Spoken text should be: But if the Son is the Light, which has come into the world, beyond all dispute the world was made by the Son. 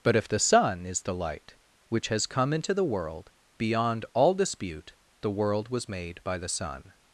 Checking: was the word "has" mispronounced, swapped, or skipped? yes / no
no